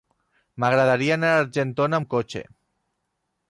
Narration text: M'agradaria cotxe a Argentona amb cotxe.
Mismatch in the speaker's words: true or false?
true